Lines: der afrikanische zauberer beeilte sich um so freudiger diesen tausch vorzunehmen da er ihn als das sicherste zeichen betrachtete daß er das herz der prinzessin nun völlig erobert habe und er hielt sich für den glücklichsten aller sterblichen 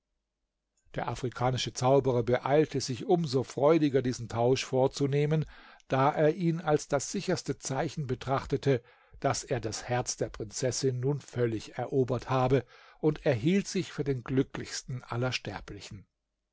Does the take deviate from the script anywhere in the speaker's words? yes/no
no